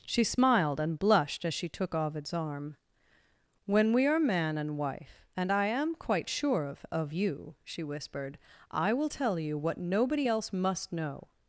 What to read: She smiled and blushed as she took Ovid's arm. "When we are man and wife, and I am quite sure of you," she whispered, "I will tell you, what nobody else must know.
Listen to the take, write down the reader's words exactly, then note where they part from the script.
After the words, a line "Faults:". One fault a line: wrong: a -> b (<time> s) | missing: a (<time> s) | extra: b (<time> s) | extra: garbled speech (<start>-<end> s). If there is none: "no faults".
She smiled and blushed as she took Ovid's arm. "When we are man and wife, and I am quite sure of of you," she whispered, "I will tell you, what nobody else must know.
Faults:
extra: of (6.9 s)